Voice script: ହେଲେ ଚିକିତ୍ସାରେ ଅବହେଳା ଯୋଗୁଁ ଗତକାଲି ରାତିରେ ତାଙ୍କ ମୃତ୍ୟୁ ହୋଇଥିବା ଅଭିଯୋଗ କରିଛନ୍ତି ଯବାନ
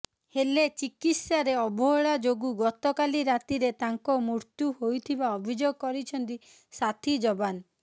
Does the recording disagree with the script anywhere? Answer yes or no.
yes